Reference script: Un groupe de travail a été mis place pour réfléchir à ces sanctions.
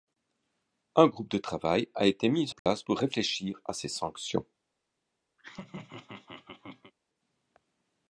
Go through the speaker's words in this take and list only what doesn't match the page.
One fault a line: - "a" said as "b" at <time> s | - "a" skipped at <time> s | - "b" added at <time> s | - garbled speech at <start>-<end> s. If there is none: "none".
none